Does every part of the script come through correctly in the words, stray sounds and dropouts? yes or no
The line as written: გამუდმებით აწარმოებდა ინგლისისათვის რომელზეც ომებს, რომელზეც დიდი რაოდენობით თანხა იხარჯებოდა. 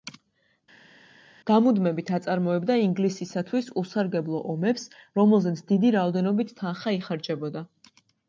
no